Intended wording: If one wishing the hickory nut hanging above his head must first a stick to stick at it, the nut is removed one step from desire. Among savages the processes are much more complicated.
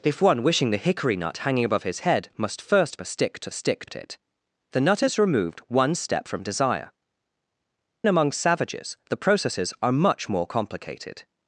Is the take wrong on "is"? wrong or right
right